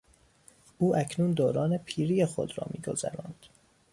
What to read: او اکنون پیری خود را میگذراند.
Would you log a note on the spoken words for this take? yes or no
yes